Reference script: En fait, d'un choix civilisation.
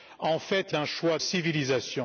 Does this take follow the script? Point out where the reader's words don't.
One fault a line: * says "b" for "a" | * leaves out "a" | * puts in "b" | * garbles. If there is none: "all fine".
all fine